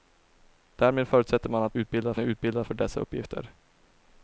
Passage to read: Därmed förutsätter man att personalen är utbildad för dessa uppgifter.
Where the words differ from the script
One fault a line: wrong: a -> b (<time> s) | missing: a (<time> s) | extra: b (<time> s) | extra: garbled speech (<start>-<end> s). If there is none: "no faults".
wrong: personalen -> utbildad (1.7 s)